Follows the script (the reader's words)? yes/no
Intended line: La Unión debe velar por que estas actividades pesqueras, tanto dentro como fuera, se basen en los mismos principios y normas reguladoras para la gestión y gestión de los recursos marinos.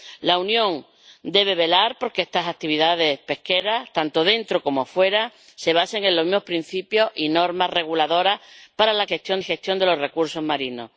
yes